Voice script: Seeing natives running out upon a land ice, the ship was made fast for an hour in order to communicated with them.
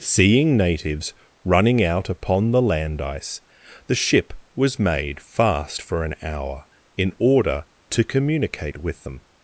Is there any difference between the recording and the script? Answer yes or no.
yes